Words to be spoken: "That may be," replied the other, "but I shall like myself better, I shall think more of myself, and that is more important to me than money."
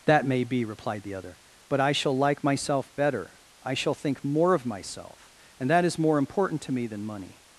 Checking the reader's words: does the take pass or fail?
pass